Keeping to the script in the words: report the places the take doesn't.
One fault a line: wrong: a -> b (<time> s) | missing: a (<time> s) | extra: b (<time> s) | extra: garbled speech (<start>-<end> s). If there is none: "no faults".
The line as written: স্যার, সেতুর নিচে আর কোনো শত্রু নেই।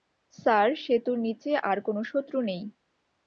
no faults